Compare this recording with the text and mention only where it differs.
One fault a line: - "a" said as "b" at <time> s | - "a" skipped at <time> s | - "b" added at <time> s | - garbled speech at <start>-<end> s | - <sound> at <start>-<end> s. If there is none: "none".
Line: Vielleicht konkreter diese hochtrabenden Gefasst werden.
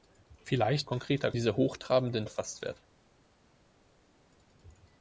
none